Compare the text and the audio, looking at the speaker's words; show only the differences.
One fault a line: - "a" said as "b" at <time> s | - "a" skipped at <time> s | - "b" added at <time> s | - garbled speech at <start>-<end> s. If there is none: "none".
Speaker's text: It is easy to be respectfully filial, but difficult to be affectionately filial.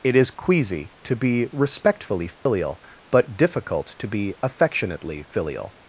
- "easy" said as "queasy" at 0.3 s